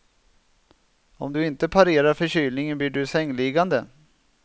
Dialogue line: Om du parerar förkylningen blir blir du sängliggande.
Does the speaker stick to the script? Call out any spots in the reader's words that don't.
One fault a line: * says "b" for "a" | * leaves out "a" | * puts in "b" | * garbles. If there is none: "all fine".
* puts in "inte"
* leaves out "blir"